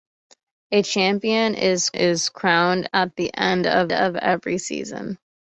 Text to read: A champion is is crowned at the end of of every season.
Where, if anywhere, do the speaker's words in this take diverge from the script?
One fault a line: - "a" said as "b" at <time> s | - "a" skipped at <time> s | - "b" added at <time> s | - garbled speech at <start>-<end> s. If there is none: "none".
none